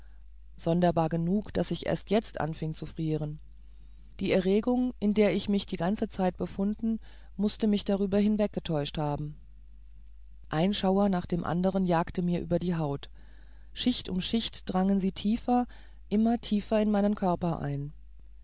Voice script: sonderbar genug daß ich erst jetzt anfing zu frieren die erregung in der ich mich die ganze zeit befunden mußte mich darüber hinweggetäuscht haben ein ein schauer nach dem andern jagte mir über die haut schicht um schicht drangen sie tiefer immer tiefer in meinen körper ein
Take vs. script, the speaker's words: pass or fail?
fail